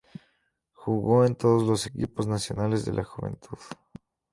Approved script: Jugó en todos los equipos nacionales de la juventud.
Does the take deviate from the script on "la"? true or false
false